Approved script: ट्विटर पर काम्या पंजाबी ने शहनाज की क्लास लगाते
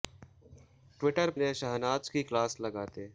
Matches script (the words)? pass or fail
fail